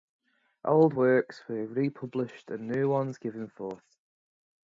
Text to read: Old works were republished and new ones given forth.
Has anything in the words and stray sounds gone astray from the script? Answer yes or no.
no